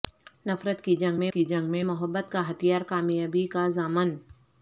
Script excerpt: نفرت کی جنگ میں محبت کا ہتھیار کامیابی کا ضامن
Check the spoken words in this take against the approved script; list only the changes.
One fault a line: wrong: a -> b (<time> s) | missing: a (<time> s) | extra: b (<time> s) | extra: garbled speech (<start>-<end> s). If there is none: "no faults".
extra: کی جنگ میں (1.3 s)